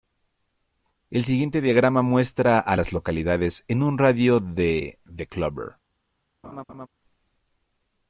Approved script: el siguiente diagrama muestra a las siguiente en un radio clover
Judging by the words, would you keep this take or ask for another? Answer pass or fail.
fail